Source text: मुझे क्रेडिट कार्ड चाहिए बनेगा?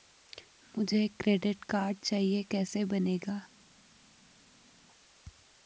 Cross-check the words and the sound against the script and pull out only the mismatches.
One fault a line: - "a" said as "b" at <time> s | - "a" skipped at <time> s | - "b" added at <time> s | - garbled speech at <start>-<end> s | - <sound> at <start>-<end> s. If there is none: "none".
- "कैसे" added at 2.5 s